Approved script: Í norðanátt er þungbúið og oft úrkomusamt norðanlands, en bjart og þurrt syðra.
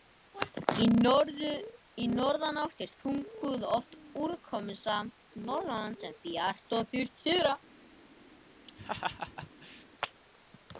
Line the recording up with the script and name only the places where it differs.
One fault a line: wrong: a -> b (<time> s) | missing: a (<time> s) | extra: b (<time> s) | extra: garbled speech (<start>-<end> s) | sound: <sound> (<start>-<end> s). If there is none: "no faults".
sound: laugh (8.7-9.9 s)